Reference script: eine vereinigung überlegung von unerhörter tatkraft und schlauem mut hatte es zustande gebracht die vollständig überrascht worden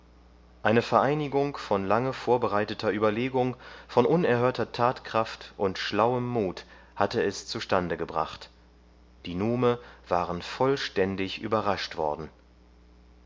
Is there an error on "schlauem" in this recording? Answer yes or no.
no